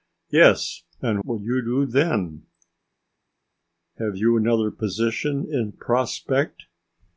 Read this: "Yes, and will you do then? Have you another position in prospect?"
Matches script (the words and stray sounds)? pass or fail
pass